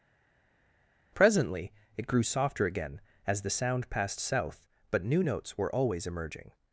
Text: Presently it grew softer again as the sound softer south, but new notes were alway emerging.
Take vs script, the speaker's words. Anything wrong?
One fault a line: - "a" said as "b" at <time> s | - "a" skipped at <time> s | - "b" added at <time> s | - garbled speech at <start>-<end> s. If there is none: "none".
- "softer" said as "passed" at 3.9 s
- "alway" said as "always" at 5.7 s